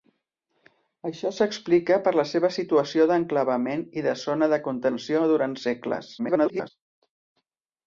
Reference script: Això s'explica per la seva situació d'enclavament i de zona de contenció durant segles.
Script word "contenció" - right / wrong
right